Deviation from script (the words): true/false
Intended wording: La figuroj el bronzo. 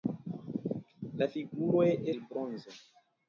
false